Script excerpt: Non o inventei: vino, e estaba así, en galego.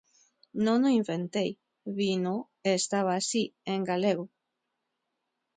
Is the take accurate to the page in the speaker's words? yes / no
yes